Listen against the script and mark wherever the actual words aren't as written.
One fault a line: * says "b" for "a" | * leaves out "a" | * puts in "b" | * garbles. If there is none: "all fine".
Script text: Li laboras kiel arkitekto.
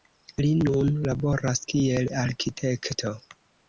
* puts in "nun"